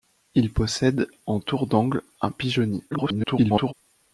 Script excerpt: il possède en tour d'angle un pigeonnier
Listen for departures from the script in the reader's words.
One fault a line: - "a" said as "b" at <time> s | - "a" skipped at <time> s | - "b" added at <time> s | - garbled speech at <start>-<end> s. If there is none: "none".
- garbled speech at 2.9-3.7 s